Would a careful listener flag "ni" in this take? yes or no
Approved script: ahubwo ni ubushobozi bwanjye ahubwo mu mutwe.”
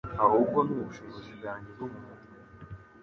no